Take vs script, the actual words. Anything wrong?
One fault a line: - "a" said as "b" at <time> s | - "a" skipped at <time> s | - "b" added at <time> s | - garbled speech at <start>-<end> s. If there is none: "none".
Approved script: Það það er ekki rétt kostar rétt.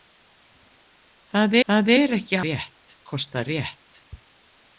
none